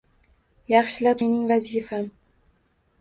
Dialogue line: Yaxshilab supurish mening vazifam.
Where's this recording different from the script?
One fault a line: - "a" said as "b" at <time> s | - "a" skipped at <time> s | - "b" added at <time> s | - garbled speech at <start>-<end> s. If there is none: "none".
- "supurish" skipped at 1.2 s